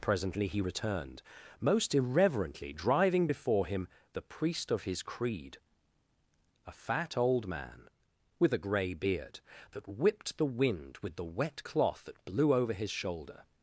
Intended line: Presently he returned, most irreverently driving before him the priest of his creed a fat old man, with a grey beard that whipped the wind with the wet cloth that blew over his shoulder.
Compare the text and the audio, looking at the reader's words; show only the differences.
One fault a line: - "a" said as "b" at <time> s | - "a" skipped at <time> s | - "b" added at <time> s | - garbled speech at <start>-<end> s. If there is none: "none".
none